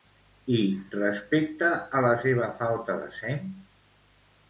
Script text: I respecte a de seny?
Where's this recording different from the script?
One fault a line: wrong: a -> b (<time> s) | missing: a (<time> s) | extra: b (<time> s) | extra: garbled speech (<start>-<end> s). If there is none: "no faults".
extra: la seva falta (2.1 s)